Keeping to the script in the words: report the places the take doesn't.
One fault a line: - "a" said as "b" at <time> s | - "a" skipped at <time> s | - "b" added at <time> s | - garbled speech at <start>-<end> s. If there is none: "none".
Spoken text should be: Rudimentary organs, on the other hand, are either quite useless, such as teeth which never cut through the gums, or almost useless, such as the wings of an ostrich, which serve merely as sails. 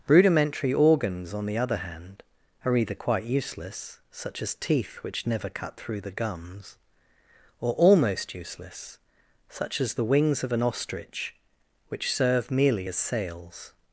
none